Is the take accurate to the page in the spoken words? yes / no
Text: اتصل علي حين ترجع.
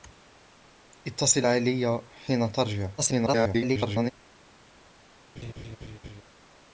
no